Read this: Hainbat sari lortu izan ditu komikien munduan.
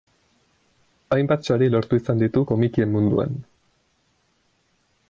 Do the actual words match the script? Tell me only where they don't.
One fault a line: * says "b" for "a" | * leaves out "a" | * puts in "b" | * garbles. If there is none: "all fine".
all fine